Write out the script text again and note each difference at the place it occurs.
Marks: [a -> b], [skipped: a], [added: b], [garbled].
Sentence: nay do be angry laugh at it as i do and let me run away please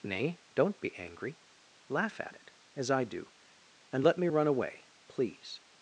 nay [do -> don't] be angry laugh at it as i do and let me run away please